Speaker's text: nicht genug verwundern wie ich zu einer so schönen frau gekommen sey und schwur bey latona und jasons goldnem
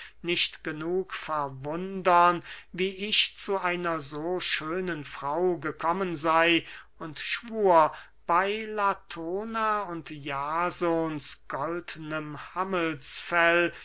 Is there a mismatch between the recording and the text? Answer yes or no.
no